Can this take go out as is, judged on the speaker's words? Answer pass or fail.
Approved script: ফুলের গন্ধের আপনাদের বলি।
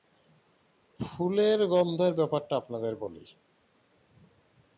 fail